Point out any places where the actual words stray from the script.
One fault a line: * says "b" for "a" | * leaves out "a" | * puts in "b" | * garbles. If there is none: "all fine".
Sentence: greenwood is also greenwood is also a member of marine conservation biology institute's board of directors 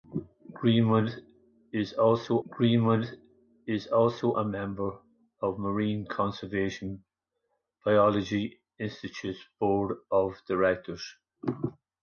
all fine